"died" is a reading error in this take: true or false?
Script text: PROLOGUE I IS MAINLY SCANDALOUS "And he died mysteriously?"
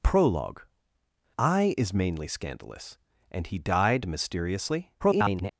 false